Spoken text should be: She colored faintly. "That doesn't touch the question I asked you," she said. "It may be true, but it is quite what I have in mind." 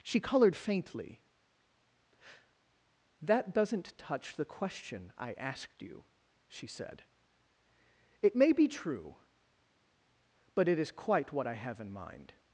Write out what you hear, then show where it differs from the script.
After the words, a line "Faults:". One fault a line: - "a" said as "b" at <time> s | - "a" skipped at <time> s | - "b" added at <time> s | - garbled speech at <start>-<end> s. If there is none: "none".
She colored faintly. "That doesn't touch the question I asked you," she said. "It may be true, but it is quite what I have in mind."
Faults:
none